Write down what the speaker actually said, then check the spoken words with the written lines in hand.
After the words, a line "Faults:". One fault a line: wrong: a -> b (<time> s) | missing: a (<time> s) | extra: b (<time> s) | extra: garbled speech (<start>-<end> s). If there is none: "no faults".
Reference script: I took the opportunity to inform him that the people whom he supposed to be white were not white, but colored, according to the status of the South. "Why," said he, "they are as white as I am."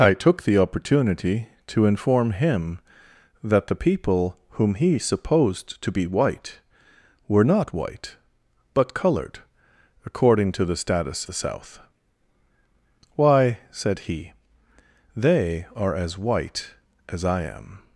I took the opportunity to inform him that the people whom he supposed to be white were not white, but colored, according to the status the South. "Why," said he, "they are as white as I am."
Faults:
missing: of (11.3 s)